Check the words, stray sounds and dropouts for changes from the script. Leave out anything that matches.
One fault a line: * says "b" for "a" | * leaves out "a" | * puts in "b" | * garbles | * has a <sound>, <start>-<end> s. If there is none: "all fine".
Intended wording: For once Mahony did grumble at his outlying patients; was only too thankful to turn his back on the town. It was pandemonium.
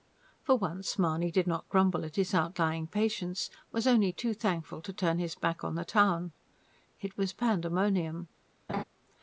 * puts in "not"
* has a laugh, 8.7-8.8 s